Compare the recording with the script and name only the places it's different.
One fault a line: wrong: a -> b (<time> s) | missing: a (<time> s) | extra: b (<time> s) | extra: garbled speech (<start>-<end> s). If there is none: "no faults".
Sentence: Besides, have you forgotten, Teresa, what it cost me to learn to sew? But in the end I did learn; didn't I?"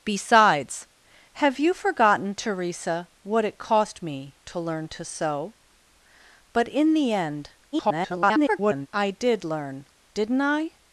extra: garbled speech (7.7-8.9 s)